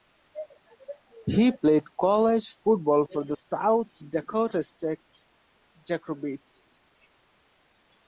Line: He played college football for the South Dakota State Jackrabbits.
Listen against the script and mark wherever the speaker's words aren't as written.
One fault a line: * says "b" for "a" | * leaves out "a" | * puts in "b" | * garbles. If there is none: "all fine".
all fine